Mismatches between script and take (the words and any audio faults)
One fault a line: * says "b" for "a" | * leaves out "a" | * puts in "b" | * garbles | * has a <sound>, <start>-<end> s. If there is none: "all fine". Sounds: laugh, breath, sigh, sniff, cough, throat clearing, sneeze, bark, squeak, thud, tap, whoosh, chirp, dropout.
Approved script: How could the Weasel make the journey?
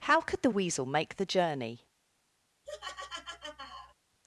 * has a laugh, 2.7-3.9 s